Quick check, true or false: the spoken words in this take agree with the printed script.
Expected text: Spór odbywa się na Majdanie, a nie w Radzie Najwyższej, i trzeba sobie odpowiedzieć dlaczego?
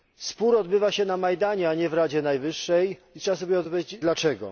true